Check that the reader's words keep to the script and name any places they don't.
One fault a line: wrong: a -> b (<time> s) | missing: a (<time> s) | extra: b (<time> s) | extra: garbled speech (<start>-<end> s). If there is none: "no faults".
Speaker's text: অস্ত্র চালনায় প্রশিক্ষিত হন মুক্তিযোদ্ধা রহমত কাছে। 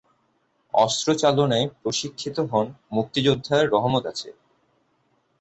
no faults